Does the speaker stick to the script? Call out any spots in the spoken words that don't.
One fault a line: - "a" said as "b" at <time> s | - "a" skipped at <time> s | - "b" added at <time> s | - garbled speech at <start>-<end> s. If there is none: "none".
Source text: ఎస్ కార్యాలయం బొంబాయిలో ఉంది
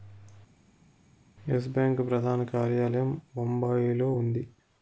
- "బ్యాంకు ప్రధాన" added at 1.7 s